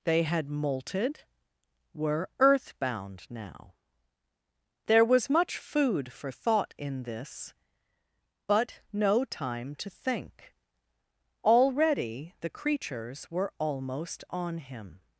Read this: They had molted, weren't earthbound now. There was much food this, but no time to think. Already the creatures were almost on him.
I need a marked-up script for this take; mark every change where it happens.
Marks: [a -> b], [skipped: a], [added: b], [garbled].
They had molted, [weren't -> were] earthbound now. There was much food [added: for thought in] this, but no time to think. Already the creatures were almost on him.